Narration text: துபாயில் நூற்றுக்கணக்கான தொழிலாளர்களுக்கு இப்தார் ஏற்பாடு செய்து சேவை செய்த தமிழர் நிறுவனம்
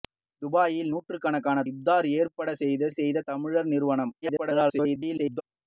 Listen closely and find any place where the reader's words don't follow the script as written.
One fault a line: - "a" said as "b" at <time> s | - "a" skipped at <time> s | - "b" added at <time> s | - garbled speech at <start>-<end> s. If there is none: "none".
- "தொழிலாளர்களுக்கு" skipped at 1.6 s
- "சேவை" skipped at 2.9 s
- garbled speech at 4.2-5.4 s